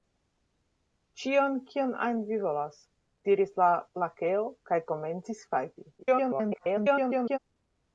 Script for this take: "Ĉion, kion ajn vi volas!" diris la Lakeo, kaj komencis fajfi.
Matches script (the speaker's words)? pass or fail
fail